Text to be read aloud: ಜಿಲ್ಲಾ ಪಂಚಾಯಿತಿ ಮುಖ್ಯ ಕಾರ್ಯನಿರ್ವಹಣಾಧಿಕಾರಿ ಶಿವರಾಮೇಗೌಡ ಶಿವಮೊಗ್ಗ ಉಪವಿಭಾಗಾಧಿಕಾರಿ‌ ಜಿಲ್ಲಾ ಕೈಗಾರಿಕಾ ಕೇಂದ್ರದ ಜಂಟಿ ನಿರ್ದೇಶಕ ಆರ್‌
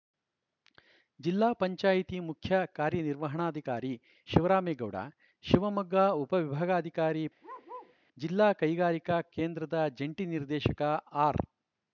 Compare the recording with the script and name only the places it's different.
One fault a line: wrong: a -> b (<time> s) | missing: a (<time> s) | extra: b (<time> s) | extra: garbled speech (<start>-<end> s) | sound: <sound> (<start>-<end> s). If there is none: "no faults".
sound: bark (7.4-8.0 s)